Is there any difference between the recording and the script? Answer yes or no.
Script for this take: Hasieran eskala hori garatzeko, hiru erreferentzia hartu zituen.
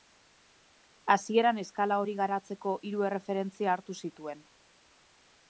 no